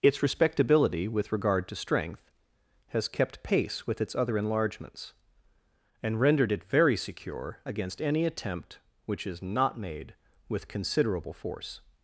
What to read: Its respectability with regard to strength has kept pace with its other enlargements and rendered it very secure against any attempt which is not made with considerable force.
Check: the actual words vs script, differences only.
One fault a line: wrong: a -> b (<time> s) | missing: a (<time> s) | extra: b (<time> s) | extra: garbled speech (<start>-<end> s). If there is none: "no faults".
no faults